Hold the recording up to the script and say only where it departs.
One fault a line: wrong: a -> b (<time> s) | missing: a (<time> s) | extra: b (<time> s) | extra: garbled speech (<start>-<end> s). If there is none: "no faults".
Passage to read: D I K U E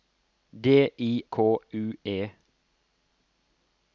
no faults